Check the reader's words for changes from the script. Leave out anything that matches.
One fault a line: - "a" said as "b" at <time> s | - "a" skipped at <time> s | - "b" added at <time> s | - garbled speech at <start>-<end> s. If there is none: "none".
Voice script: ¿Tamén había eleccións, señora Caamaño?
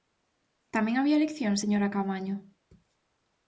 none